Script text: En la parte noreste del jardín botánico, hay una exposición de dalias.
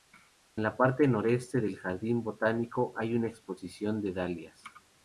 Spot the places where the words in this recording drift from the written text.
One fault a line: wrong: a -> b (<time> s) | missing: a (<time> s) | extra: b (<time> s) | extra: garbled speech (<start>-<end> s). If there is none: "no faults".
no faults